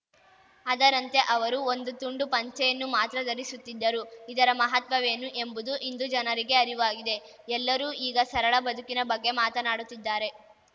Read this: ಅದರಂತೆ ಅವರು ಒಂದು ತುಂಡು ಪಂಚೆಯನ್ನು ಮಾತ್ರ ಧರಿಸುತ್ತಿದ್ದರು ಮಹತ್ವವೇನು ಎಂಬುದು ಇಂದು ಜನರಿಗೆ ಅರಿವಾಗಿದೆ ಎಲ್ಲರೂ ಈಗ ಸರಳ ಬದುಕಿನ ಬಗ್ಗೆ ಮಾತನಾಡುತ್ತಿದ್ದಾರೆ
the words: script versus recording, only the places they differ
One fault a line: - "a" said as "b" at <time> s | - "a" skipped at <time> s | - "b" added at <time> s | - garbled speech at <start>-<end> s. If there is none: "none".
- "ಇದರ" added at 4.3 s